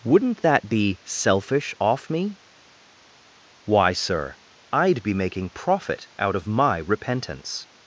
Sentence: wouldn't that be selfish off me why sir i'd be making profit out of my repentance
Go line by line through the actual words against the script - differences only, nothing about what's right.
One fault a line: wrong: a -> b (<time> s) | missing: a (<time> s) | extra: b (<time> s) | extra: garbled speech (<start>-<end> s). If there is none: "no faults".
no faults